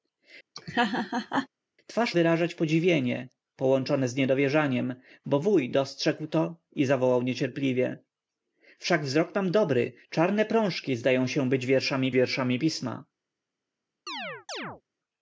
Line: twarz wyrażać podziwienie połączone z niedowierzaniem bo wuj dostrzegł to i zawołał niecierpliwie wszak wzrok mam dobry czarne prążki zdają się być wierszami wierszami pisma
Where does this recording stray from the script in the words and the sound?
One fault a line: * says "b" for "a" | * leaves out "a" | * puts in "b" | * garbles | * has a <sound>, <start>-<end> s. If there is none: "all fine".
* has a laugh, 0.6-1.5 s
* has a chirp, 14.1-14.8 s